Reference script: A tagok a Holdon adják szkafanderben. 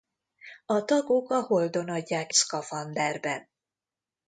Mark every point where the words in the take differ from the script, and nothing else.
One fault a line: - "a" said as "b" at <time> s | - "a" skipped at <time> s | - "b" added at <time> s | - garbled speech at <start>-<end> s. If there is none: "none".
none